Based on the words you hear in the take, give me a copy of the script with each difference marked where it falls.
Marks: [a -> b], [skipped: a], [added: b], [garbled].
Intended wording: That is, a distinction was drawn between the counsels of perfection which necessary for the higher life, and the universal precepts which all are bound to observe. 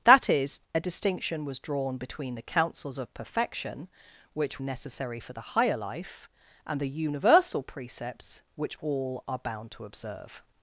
That is, a distinction was drawn between the counsels of perfection which necessary for the higher life, and the universal precepts which all are bound to observe.